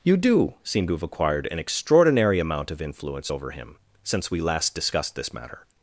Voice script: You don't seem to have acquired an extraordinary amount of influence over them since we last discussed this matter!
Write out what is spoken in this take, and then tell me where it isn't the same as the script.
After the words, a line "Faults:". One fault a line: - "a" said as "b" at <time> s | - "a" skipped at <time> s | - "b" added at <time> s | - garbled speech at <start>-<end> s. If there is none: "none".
You do seem to have acquired an extraordinary amount of influence over him since we last discussed this matter!
Faults:
- "don't" said as "do" at 0.2 s
- "them" said as "him" at 3.5 s